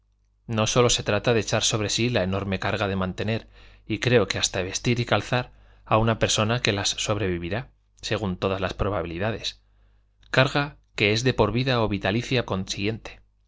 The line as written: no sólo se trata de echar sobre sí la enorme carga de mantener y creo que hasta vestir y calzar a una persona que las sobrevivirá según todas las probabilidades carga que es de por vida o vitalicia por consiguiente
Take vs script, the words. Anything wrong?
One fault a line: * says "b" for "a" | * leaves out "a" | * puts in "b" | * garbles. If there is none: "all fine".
* leaves out "por"